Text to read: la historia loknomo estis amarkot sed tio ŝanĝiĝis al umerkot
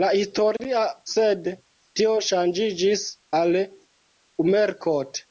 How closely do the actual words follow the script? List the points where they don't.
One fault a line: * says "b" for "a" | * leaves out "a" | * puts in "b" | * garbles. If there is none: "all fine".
* leaves out "loknomo estis amarkot"